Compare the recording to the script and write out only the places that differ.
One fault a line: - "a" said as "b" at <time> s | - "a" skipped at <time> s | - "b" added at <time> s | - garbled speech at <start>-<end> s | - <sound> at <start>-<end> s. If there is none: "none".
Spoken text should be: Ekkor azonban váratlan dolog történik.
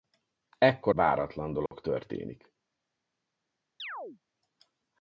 - "azonban" skipped at 0.9 s
- dropout at 1.7-1.7 s
- chirp at 3.8-4.2 s